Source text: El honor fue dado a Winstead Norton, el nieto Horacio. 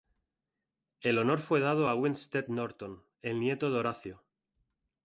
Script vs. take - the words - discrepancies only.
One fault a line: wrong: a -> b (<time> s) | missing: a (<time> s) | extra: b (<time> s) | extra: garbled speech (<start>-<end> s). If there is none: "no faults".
extra: de (3.7 s)